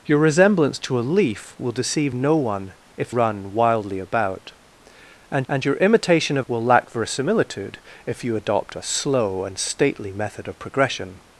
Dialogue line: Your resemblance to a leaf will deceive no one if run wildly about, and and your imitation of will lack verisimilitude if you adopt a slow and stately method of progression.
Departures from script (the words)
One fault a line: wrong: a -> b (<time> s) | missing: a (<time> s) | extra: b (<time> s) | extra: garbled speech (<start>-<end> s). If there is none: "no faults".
no faults